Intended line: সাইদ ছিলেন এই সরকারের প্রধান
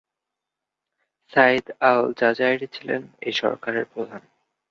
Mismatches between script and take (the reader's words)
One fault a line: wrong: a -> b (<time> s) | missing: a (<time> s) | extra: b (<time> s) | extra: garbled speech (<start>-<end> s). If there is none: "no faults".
extra: আল জাজাইরি (1.8 s)